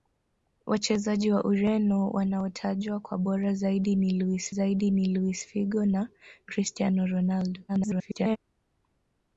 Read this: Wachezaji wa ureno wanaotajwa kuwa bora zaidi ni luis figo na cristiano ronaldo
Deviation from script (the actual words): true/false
true